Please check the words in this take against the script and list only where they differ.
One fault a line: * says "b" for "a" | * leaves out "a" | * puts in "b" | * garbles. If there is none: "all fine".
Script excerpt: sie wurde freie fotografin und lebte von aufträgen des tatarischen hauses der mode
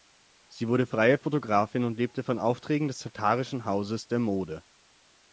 all fine